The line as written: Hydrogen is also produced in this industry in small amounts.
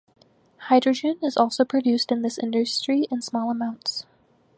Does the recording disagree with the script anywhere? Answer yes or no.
no